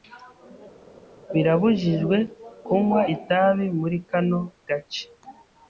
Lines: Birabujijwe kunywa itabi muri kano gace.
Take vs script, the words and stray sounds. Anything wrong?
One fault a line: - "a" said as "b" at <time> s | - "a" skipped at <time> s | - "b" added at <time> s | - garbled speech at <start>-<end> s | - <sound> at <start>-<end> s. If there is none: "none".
none